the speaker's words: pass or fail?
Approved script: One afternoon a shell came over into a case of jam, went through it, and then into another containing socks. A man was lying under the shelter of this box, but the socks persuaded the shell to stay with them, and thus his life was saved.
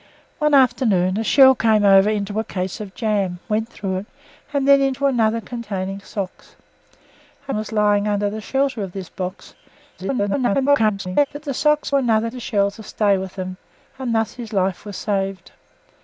fail